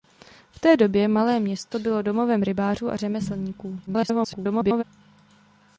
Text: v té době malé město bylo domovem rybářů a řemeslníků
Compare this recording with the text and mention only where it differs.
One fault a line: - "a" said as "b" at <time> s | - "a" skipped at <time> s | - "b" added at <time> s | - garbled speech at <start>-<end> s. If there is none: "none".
- garbled speech at 3.9-4.8 s